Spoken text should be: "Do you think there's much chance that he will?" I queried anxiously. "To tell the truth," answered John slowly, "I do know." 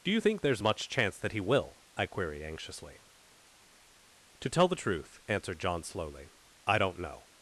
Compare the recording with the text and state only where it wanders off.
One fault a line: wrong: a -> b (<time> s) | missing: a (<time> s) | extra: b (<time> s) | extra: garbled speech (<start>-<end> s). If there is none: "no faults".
wrong: do -> don't (6.8 s)